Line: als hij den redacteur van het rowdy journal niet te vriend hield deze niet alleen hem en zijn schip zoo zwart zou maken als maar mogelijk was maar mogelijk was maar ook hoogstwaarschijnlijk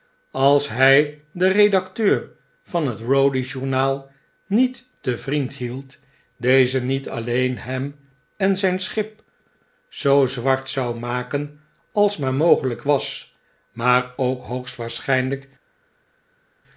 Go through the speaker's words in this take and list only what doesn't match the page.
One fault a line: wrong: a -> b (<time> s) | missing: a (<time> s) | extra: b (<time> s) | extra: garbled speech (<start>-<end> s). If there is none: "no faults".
missing: mogelijk was maar (14.1 s)